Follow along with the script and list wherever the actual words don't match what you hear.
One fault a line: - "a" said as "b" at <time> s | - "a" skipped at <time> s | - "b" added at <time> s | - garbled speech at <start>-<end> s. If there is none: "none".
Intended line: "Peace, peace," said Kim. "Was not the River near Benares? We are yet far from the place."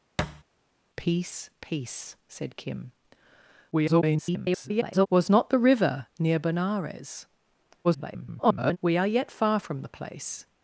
- garbled speech at 3.7-5.1 s
- garbled speech at 7.8-8.8 s